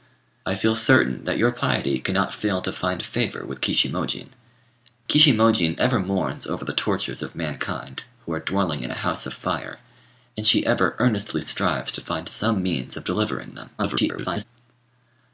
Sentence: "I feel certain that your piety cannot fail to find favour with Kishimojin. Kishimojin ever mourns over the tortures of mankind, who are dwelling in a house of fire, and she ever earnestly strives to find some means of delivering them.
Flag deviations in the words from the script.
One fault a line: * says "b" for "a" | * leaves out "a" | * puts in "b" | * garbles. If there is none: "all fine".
* garbles